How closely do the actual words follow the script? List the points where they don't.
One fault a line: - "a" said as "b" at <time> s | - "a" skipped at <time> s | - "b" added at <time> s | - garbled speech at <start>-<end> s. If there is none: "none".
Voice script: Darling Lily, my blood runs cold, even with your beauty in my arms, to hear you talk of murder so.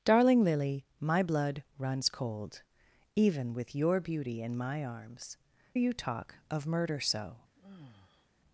- "to hear" skipped at 5.4 s